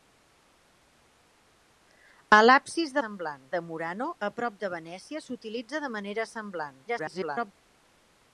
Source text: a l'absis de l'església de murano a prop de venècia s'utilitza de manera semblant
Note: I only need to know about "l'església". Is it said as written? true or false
false